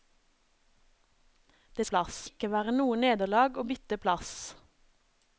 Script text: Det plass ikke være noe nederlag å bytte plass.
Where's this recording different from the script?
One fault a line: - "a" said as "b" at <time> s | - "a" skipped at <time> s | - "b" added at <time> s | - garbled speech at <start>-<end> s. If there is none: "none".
none